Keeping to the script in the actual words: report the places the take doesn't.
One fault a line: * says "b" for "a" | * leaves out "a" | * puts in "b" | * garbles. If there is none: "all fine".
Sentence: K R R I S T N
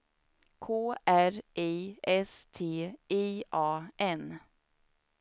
* leaves out "R"
* puts in "I A"